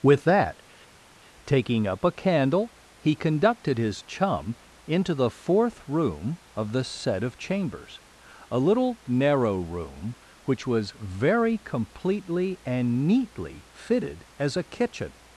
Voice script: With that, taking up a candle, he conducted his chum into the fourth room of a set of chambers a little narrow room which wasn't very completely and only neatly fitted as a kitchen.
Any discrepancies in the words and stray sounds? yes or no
yes